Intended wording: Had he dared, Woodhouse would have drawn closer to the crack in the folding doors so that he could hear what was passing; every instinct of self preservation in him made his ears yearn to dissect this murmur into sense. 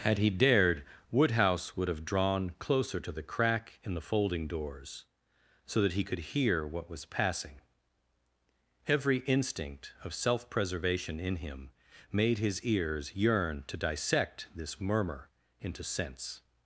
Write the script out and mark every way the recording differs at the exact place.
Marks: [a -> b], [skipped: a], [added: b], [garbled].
Had he dared, Woodhouse would have drawn closer to the crack in the folding doors so that he could hear what was passing; every instinct of self preservation in him made his ears yearn to dissect this murmur into sense.